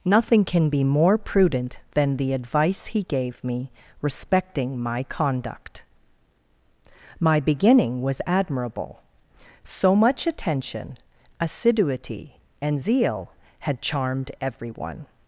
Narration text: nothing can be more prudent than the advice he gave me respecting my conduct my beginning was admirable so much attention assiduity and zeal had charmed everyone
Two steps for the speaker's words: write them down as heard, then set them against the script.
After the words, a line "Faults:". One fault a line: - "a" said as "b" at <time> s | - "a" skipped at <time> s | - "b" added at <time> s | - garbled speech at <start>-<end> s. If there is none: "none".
nothing can be more prudent than the advice he gave me respecting my conduct my beginning was admirable so much attention assiduity and zeal had charmed everyone
Faults:
none